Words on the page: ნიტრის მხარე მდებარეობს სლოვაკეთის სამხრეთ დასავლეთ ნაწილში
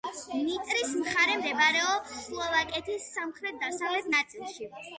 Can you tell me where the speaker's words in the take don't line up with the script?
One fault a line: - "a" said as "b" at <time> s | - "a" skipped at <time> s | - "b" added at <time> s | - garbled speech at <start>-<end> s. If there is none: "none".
none